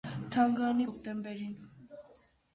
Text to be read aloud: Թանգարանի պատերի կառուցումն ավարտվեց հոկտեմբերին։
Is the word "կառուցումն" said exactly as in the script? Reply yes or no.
no